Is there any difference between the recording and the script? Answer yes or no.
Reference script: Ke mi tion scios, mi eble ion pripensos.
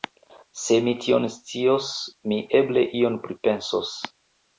yes